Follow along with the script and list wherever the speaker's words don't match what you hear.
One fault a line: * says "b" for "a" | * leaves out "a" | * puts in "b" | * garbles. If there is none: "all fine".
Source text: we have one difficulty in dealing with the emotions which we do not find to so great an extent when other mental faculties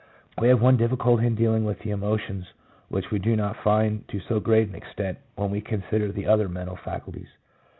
* puts in "we consider the"